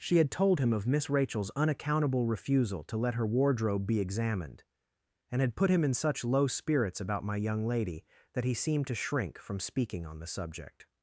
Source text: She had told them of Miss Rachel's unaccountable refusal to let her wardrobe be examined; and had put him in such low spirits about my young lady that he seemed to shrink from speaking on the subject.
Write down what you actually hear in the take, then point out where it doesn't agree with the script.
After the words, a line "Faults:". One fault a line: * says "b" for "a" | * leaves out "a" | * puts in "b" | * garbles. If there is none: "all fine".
She had told him of Miss Rachel's unaccountable refusal to let her wardrobe be examined; and had put him in such low spirits about my young lady that he seemed to shrink from speaking on the subject.
Faults:
* says "him" for "them"